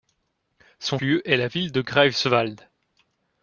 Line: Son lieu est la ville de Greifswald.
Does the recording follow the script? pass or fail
pass